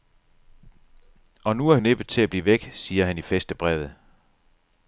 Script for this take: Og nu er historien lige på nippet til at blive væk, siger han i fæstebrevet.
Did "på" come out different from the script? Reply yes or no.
yes